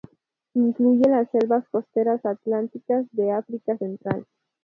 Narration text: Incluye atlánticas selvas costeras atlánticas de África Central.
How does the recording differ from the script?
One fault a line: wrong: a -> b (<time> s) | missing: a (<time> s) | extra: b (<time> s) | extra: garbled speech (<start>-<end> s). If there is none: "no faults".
wrong: atlánticas -> las (1.1 s)